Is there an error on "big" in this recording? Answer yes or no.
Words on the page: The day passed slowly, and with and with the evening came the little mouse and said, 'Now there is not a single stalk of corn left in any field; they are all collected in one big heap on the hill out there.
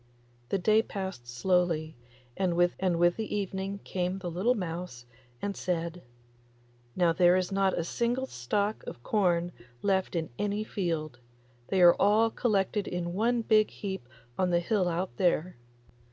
no